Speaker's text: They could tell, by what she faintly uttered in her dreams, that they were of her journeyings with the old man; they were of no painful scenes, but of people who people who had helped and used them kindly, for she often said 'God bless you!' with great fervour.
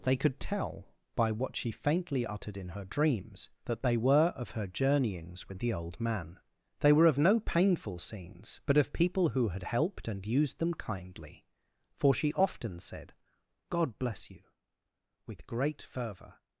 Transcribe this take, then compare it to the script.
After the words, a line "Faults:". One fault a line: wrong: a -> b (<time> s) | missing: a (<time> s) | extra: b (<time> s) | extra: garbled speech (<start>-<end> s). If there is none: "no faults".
They could tell, by what she faintly uttered in her dreams, that they were of her journeyings with the old man; they were of no painful scenes, but of people who had helped and used them kindly, for she often said 'God bless you!' with great fervour.
Faults:
missing: people who (9.5 s)